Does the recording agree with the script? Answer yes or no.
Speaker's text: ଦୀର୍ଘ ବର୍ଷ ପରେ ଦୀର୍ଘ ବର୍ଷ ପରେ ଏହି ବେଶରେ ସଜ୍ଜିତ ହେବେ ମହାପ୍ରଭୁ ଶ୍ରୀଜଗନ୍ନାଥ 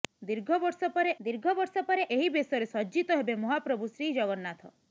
yes